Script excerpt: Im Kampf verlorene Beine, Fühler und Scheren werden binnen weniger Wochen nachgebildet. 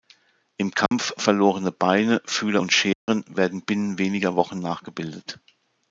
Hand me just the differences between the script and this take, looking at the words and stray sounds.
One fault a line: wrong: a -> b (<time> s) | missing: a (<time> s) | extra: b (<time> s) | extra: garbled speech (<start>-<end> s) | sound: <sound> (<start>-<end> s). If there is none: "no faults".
sound: dropout (0.9-0.9 s)
sound: dropout (2.9-3.1 s)